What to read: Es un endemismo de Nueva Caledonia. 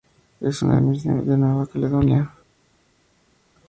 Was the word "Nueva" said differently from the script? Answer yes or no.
no